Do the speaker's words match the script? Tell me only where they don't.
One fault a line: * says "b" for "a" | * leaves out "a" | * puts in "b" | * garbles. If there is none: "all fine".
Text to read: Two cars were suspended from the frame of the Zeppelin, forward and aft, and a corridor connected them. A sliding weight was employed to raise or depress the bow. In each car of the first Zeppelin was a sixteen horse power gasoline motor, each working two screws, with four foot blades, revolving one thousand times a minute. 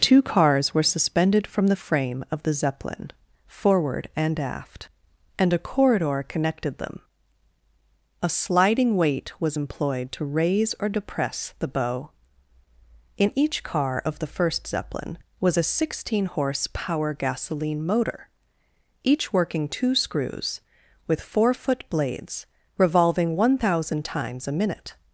all fine